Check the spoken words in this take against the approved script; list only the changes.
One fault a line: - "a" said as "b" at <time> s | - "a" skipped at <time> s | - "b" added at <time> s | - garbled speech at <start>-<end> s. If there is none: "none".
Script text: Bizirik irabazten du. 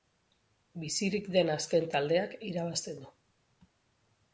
- "den azken taldeak" added at 1.4 s